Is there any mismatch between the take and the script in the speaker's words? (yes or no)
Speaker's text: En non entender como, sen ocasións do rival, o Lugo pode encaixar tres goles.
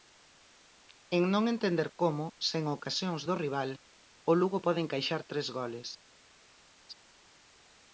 no